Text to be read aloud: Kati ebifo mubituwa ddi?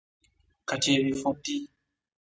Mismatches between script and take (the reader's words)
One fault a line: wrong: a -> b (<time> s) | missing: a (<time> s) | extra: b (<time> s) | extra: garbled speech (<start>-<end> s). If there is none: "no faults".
missing: mubituwa (1.3 s)